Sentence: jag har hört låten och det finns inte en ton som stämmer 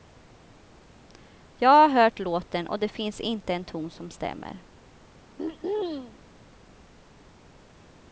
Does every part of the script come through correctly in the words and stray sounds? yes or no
no